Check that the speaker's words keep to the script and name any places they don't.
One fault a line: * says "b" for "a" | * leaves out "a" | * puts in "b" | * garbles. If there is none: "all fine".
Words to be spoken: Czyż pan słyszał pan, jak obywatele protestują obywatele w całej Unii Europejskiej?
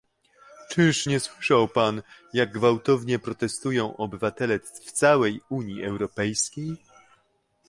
* says "nie" for "pan"
* says "gwałtownie" for "obywatele"